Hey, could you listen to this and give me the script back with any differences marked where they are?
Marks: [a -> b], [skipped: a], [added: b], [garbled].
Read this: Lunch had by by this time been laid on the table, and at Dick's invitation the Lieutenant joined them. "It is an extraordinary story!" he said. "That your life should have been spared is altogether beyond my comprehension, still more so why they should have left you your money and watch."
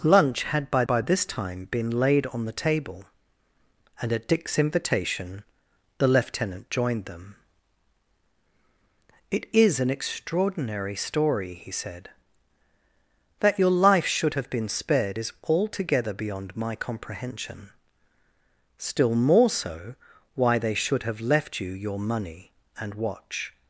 Lunch had by by this time been laid on the table, and at Dick's invitation the Lieutenant joined them. "It is an extraordinary story!" he said. "That your life should have been spared is altogether beyond my comprehension, still more so why they should have left you your money and watch."